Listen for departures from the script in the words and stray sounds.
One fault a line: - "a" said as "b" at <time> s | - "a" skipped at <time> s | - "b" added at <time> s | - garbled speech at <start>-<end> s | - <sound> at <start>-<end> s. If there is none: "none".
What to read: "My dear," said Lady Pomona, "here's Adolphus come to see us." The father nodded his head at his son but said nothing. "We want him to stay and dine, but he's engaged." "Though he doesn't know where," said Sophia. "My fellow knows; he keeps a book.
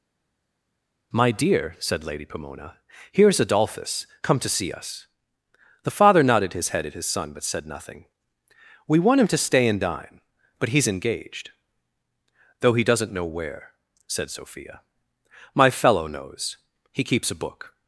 none